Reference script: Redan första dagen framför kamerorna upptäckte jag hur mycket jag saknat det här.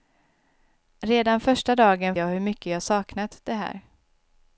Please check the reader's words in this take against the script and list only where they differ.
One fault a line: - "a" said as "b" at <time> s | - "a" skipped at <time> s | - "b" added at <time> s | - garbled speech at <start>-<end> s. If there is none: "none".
- "framför kamerorna upptäckte" skipped at 2.1 s